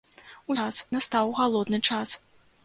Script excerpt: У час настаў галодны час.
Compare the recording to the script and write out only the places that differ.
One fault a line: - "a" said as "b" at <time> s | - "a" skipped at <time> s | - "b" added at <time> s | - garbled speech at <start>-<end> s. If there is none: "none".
none